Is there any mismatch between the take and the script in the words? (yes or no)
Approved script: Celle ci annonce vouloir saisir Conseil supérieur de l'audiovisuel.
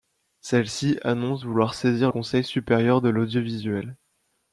no